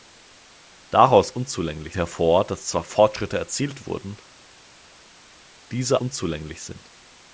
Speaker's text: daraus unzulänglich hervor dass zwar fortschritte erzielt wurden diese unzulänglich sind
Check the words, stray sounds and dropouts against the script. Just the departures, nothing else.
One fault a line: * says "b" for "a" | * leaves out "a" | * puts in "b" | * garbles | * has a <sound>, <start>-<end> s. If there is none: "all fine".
all fine